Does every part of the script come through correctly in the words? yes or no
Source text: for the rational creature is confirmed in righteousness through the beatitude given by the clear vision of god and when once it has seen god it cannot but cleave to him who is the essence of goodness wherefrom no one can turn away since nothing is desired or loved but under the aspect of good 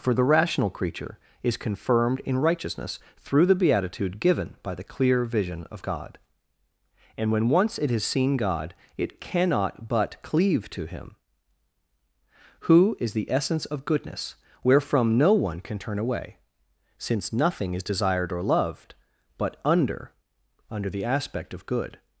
no